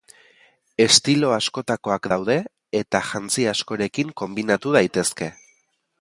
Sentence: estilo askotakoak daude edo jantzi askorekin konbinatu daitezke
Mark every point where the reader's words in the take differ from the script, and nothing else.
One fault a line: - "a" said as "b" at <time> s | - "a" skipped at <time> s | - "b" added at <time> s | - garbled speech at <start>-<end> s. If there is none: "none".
- "edo" said as "eta" at 2.8 s